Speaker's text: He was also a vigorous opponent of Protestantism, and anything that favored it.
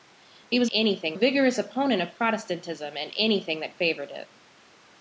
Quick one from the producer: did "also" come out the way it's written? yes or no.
no